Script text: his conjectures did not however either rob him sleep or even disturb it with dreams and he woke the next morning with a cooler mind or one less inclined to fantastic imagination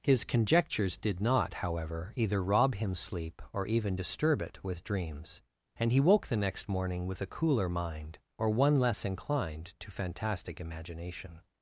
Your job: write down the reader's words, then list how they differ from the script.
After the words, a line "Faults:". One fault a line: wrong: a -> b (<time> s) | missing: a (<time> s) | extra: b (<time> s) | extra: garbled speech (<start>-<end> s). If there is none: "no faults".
his conjectures did not however either rob him sleep or even disturb it with dreams and he woke the next morning with a cooler mind or one less inclined to fantastic imagination
Faults:
no faults